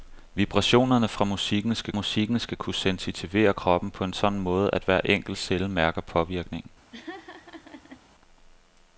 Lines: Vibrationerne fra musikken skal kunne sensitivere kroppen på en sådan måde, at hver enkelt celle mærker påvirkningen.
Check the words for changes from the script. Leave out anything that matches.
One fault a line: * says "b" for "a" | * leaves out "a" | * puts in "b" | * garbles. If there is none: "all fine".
* puts in "musikken skal"